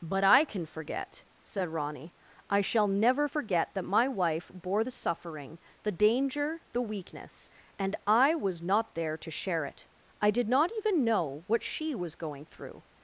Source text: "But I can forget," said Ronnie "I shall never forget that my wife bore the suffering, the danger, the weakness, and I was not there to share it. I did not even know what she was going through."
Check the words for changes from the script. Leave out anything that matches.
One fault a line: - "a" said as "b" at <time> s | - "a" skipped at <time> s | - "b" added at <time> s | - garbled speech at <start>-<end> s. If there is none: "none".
none